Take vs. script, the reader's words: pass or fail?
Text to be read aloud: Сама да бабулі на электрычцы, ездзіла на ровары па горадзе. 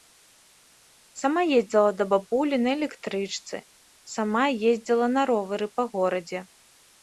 fail